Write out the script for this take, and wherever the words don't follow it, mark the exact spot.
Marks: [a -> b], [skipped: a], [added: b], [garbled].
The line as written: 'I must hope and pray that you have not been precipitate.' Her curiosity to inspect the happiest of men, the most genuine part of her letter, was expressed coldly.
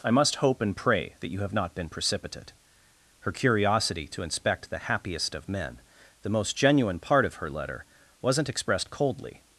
'I must hope and pray that you have not been precipitate.' Her curiosity to inspect the happiest of men, the most genuine part of her letter, [was -> wasn't] expressed coldly.